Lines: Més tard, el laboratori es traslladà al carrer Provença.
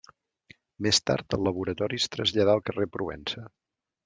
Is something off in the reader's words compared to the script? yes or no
no